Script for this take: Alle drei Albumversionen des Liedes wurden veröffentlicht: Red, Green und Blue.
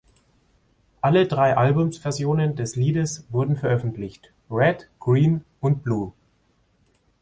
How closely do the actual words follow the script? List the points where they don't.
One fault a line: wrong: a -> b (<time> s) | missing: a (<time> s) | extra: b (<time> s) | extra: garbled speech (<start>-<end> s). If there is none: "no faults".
no faults